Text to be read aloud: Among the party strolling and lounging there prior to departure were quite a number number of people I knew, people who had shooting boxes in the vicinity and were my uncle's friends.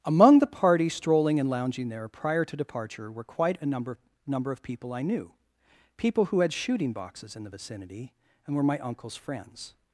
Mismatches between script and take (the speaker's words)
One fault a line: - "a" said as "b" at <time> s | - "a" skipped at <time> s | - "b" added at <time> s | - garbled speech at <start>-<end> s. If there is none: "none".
none